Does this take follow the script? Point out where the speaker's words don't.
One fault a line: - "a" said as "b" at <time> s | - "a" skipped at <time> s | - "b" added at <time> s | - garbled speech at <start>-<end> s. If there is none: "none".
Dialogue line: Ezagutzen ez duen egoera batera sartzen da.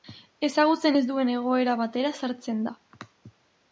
none